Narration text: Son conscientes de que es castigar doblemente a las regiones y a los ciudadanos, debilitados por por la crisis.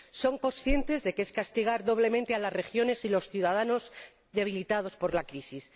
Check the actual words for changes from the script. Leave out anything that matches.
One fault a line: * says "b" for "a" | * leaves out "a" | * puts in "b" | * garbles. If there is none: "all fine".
* leaves out "por"